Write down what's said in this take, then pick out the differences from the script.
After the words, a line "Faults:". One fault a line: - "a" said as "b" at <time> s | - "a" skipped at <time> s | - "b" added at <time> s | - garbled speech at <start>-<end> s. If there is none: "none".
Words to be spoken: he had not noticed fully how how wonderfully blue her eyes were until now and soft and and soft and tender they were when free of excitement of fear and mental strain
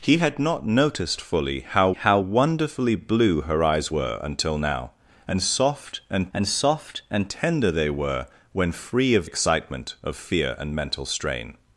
he had not noticed fully how how wonderfully blue her eyes were until now and soft and and soft and tender they were when free of excitement of fear and mental strain
Faults:
none